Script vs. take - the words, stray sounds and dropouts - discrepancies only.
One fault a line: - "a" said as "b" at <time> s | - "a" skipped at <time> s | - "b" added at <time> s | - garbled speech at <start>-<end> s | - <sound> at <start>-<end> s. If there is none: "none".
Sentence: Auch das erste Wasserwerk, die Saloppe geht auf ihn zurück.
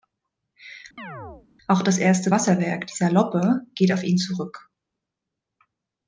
- chirp at 1.0-1.5 s